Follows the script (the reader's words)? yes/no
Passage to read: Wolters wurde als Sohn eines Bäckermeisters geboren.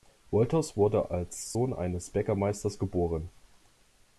yes